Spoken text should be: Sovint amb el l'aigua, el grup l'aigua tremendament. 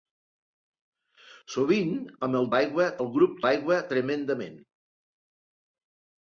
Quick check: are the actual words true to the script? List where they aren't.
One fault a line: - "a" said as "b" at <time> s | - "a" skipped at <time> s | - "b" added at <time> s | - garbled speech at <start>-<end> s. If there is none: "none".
none